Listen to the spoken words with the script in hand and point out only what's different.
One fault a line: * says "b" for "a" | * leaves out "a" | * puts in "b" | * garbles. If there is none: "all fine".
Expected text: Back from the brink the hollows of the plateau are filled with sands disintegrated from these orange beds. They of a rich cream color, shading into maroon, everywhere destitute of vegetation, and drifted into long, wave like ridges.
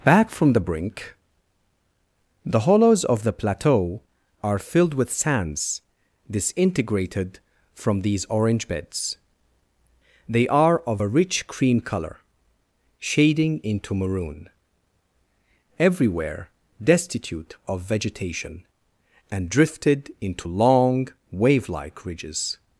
* puts in "are"